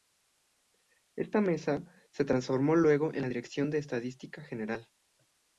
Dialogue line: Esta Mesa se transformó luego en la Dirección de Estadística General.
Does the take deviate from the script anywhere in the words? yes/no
no